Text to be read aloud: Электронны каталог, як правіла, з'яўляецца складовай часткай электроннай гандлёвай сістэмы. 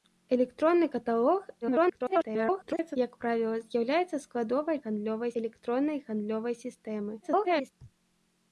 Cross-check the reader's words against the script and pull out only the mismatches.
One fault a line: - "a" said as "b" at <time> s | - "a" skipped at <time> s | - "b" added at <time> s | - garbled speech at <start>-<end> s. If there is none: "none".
- garbled speech at 1.6-3.0 s
- "часткай" said as "гандлёвай" at 4.8 s
- garbled speech at 7.2-7.7 s